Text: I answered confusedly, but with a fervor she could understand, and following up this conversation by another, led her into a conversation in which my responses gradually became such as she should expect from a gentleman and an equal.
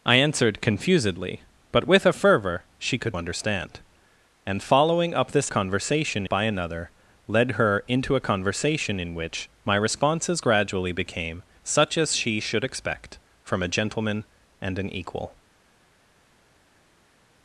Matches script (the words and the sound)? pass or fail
pass